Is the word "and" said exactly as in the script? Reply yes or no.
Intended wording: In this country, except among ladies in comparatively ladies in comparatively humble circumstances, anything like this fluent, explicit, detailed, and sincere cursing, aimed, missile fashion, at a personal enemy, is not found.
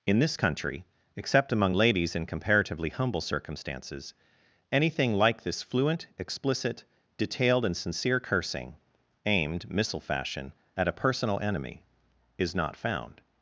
yes